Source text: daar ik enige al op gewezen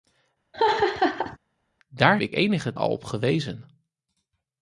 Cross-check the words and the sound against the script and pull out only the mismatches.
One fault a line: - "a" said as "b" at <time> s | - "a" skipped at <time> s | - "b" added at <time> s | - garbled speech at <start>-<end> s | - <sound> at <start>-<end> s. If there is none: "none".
- laugh at 0.5-1.4 s